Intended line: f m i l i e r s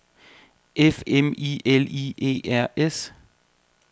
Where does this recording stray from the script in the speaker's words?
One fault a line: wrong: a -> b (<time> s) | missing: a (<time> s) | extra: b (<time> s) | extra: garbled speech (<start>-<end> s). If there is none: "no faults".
no faults